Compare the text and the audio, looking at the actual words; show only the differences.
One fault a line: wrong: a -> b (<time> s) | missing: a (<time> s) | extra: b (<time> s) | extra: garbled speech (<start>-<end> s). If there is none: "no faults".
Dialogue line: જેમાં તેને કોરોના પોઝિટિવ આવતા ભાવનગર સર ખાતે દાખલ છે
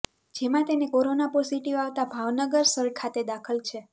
no faults